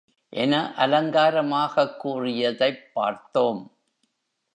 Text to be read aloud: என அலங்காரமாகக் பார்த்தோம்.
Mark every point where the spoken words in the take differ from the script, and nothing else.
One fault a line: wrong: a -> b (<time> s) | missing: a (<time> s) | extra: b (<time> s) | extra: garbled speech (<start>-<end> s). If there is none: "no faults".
extra: கூறியதைப் (2.0 s)